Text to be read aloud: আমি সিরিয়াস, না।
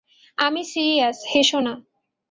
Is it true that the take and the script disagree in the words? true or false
true